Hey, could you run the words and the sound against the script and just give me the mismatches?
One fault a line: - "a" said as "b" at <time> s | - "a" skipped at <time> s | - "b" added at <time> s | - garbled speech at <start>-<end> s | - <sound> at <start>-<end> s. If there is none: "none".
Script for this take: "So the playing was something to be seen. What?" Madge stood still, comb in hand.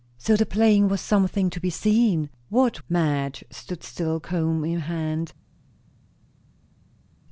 none